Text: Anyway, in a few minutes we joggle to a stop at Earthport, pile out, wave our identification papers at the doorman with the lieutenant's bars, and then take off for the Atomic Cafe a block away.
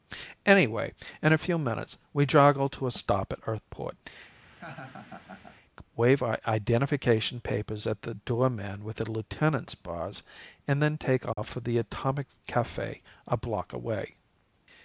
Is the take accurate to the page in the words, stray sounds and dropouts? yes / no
no